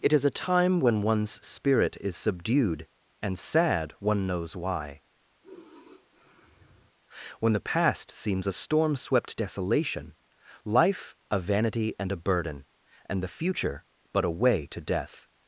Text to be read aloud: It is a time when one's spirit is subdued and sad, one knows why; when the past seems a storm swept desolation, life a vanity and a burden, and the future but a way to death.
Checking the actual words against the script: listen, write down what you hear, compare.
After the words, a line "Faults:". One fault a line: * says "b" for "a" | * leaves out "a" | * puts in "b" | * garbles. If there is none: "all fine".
It is a time when one's spirit is subdued and sad, one knows why; when the past seems a storm swept desolation, life a vanity and a burden, and the future but a way to death.
Faults:
all fine